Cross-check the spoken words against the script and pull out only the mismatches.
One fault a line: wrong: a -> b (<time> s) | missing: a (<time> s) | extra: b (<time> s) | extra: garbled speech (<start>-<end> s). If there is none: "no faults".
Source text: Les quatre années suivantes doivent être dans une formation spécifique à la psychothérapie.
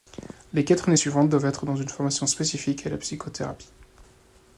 no faults